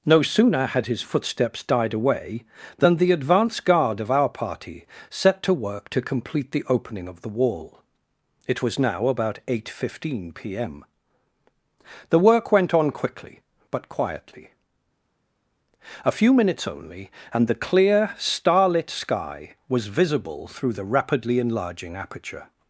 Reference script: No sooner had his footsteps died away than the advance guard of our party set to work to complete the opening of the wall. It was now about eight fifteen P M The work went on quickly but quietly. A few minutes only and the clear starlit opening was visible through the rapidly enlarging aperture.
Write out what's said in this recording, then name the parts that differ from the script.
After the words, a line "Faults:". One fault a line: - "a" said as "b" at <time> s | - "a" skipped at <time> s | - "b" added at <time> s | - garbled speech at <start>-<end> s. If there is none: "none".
No sooner had his footsteps died away than the advance guard of our party set to work to complete the opening of the wall. It was now about eight fifteen P M The work went on quickly but quietly. A few minutes only and the clear starlit sky was visible through the rapidly enlarging aperture.
Faults:
- "opening" said as "sky" at 18.9 s